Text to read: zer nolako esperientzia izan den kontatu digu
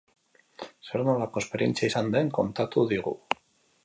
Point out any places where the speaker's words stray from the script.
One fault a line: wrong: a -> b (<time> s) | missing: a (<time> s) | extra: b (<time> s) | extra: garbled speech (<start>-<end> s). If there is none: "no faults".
no faults